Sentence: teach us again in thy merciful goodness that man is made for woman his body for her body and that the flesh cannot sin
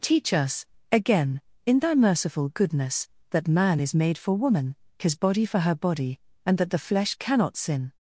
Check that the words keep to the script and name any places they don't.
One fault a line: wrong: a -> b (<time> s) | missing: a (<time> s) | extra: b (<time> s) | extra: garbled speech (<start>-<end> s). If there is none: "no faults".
no faults